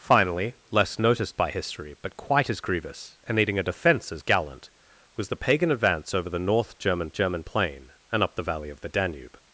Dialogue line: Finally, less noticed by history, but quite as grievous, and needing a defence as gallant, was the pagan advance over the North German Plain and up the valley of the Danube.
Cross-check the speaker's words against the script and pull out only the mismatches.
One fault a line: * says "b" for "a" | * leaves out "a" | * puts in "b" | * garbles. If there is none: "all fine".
* puts in "German"